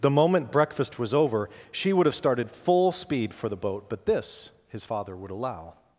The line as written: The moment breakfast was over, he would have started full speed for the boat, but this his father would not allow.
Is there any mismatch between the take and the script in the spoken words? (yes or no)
yes